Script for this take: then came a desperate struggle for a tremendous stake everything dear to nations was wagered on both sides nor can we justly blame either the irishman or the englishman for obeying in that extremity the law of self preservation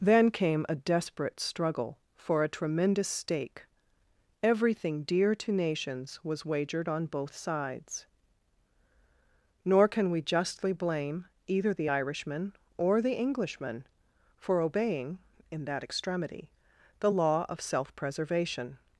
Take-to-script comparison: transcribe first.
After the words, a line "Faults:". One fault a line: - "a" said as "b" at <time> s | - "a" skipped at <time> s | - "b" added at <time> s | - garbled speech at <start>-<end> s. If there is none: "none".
then came a desperate struggle for a tremendous stake everything dear to nations was wagered on both sides nor can we justly blame either the irishman or the englishman for obeying in that extremity the law of self preservation
Faults:
none